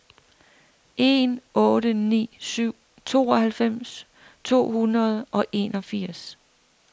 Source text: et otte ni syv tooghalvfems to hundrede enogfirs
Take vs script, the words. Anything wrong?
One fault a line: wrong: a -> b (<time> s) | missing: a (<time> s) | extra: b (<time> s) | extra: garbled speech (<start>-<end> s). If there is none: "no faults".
wrong: et -> en (1.0 s)
extra: og (5.3 s)